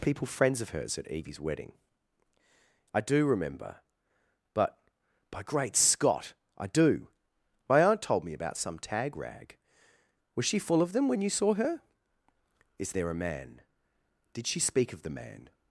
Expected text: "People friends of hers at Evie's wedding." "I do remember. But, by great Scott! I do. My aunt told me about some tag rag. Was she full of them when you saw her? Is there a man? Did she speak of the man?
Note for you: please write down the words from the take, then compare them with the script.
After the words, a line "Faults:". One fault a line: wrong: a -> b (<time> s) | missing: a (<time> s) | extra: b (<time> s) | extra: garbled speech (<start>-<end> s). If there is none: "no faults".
"People friends of hers at Evie's wedding." "I do remember. But, by great Scott! I do. My aunt told me about some tag rag. Was she full of them when you saw her? Is there a man? Did she speak of the man?
Faults:
no faults